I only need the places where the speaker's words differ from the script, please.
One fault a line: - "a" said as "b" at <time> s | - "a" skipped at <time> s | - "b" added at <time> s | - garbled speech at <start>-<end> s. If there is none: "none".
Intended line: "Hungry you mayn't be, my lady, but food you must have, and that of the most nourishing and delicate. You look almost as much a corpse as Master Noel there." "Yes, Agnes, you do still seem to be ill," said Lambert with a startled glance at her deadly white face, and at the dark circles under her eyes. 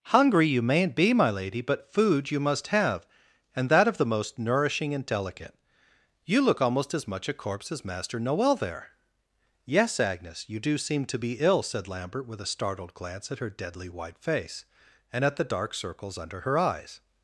- "still" skipped at 10.8 s